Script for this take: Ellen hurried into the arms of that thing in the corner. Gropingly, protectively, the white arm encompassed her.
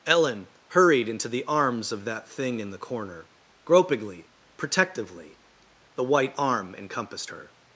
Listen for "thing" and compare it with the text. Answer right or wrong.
right